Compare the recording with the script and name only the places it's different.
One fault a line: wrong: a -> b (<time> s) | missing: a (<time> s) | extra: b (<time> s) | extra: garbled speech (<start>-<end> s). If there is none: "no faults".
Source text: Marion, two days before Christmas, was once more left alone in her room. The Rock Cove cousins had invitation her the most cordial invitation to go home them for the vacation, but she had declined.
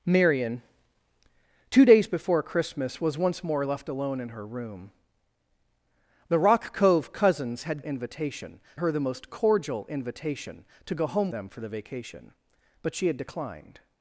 no faults